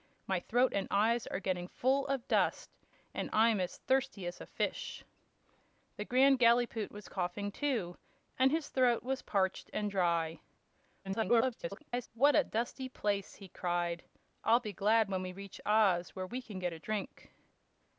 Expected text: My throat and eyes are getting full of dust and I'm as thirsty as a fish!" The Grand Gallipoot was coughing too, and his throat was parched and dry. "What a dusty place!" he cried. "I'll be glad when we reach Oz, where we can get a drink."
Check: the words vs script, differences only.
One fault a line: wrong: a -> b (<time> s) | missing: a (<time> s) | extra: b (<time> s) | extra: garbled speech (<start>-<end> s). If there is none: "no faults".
extra: garbled speech (11.0-12.1 s)